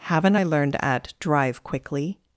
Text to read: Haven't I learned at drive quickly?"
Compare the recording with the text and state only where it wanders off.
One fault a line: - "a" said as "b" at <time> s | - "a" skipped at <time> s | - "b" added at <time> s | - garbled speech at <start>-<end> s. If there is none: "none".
none